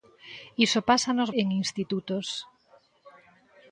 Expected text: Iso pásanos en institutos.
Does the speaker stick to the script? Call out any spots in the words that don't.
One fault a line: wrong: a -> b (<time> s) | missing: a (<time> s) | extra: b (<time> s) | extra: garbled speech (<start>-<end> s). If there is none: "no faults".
no faults